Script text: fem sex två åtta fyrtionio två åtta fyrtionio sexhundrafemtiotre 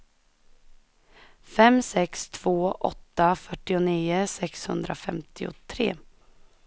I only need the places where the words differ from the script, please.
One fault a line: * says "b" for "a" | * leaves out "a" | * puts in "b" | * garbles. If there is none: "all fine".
* leaves out "två åtta fyrtionio"